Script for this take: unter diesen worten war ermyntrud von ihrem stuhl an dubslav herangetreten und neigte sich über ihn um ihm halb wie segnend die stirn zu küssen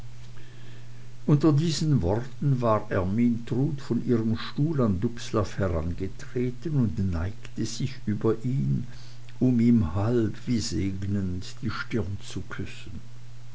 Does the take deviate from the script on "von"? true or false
false